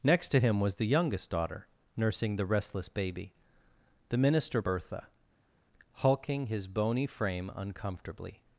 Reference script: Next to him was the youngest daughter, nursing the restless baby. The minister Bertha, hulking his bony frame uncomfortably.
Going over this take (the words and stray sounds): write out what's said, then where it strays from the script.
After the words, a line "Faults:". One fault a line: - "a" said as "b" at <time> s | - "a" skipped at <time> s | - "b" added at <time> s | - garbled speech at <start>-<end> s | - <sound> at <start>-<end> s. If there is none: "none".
Next to him was the youngest daughter, nursing the restless baby. The minister Bertha, hulking his bony frame uncomfortably.
Faults:
none